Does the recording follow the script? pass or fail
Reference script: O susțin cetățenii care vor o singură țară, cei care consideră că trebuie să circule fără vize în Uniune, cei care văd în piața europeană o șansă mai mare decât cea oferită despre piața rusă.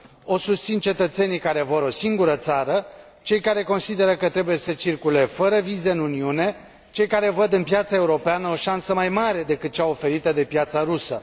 fail